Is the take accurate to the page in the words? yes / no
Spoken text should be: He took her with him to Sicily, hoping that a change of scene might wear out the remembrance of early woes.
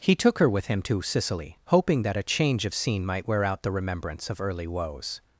yes